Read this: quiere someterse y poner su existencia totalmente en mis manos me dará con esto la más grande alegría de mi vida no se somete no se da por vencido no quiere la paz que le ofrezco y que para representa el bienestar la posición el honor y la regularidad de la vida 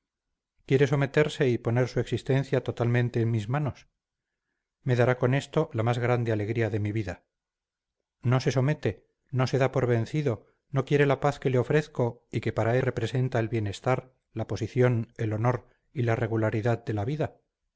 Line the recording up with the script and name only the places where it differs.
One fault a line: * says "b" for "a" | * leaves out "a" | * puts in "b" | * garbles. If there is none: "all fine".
all fine